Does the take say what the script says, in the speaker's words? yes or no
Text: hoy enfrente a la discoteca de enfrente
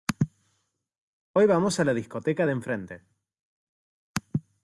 no